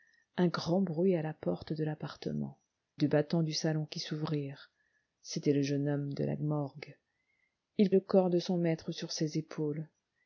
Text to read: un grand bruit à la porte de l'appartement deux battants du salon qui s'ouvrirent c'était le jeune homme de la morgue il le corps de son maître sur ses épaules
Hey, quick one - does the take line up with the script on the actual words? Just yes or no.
yes